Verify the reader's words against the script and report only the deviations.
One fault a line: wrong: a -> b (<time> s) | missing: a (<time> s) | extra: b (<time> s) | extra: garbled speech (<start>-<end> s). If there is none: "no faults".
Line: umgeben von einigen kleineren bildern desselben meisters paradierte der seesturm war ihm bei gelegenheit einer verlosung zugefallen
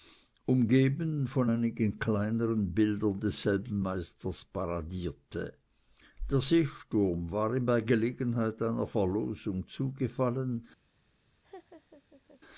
no faults